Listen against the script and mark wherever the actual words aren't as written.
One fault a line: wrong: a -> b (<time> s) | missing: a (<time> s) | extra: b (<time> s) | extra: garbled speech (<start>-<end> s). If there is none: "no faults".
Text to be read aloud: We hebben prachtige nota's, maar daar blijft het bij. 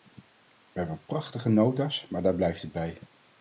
no faults